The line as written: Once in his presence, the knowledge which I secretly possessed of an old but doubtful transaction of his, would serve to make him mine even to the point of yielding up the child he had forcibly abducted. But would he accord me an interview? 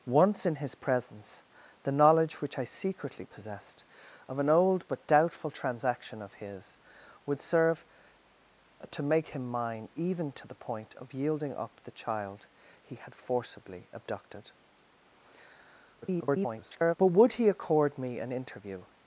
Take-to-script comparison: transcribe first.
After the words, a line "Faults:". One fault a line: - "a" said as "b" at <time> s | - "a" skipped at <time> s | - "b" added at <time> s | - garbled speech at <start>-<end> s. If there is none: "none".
Once in his presence, the knowledge which I secretly possessed of an old but doubtful transaction of his, would serve to make him mine even to the point of yielding up the child he had forcibly abducted. [garbled] But would he accord me an interview?
Faults:
- garbled speech at 16.0-17.0 s